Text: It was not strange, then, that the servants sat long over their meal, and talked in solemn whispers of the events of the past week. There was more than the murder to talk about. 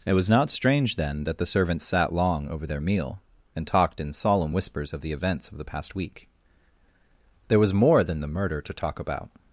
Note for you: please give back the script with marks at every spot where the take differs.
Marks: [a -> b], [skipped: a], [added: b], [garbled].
It was not strange, then, that the servants sat long over their meal, and talked in solemn whispers of the events of the past week. There was more than the murder to talk about.